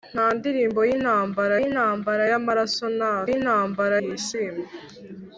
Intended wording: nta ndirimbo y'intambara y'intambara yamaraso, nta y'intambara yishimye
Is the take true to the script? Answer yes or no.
yes